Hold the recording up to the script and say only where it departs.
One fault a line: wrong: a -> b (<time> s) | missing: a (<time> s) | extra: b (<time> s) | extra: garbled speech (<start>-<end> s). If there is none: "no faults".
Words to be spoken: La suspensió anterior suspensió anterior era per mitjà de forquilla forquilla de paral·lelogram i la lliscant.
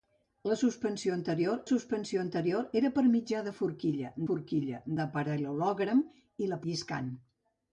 no faults